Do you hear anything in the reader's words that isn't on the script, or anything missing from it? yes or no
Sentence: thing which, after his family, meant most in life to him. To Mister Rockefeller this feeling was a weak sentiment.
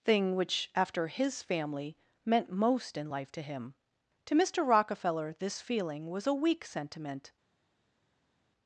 no